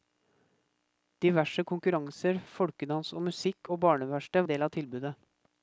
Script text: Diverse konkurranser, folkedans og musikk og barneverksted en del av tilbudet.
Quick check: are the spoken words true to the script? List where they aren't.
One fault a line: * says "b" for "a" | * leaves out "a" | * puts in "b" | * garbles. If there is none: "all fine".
all fine